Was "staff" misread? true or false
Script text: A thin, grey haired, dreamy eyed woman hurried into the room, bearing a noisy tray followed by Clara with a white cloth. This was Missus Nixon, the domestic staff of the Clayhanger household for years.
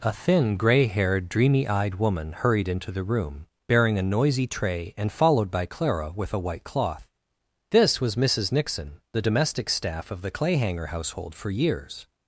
false